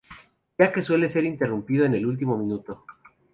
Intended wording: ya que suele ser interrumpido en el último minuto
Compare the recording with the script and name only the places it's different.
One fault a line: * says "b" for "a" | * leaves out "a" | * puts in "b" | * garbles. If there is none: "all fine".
all fine